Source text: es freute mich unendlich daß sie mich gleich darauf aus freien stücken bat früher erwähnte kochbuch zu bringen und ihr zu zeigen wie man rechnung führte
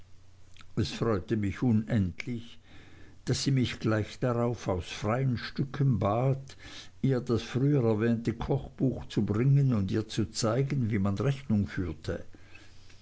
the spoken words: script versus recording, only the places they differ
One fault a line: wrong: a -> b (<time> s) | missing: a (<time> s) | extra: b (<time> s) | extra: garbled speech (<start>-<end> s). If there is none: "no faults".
extra: ihr das (7.0 s)